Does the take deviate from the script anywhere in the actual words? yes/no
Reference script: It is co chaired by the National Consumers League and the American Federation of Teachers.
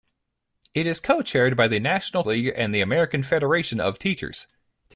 yes